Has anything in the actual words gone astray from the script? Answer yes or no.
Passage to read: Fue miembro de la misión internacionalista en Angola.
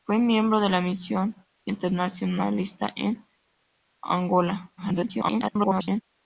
yes